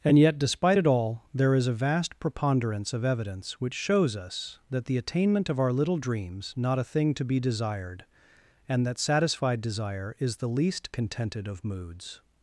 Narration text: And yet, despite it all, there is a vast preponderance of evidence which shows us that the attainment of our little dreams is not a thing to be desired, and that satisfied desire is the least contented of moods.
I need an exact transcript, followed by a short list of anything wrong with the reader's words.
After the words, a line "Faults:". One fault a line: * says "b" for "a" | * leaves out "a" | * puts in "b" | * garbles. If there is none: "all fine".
And yet, despite it all, there is a vast preponderance of evidence which shows us that the attainment of our little dreams not a thing to be desired, and that satisfied desire is the least contented of moods.
Faults:
* leaves out "is"